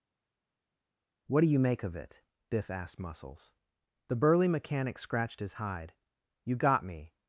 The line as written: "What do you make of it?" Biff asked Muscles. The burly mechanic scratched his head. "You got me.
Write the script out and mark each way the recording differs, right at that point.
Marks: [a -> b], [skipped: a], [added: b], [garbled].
"What do you make of it?" Biff asked Muscles. The burly mechanic scratched his [head. -> hide] "You got me.